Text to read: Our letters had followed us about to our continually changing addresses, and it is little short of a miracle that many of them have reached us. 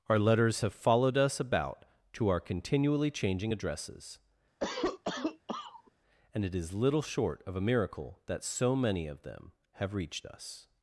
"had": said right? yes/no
no